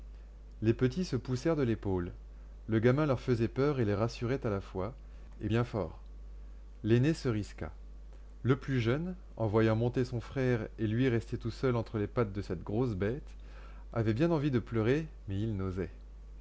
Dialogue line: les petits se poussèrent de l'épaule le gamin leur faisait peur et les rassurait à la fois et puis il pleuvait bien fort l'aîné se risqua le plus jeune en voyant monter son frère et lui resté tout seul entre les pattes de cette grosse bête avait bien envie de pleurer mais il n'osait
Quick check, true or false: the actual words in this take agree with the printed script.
false